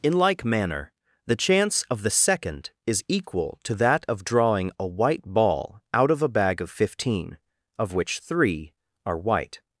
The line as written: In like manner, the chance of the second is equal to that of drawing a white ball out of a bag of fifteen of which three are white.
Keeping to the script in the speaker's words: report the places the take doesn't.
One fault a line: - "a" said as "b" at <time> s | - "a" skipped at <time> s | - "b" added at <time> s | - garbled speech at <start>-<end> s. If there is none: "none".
none